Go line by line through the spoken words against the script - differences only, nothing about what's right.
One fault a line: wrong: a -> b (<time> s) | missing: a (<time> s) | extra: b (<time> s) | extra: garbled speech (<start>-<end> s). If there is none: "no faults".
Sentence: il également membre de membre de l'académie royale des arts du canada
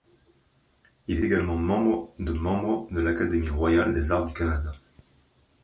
no faults